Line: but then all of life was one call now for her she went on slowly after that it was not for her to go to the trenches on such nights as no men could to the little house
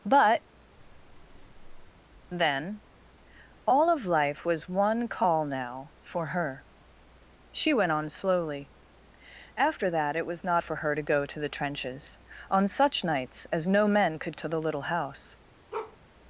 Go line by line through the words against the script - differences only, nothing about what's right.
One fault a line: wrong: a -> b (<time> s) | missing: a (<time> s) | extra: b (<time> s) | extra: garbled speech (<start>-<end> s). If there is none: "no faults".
no faults